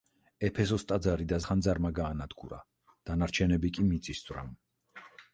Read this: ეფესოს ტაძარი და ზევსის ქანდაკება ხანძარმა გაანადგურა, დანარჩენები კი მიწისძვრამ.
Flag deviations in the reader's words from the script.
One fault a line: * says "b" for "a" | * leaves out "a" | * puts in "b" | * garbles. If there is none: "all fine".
* leaves out "ზევსის ქანდაკება"